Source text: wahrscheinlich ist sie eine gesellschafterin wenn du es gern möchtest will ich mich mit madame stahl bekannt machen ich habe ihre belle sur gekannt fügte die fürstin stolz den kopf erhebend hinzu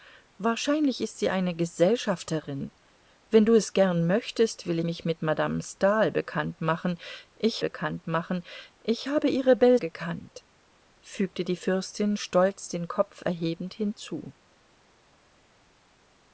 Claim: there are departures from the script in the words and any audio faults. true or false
true